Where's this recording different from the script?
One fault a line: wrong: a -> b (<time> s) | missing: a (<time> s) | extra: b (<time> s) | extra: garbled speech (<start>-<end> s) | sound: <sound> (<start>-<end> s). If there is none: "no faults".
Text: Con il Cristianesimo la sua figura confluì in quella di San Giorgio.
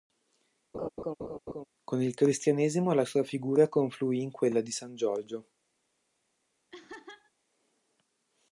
sound: laugh (0.7-1.7 s)
sound: laugh (6.7-7.3 s)